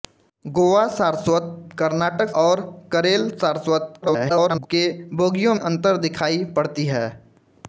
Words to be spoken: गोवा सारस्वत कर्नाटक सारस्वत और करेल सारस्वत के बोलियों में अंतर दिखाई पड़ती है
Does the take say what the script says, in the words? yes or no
no